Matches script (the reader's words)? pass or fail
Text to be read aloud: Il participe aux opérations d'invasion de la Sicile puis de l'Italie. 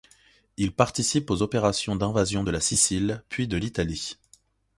pass